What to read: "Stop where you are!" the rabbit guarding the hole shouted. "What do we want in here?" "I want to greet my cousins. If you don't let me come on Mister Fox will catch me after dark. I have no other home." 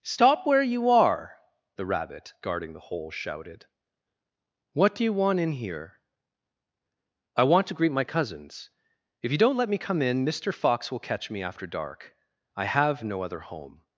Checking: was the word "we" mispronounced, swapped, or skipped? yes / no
yes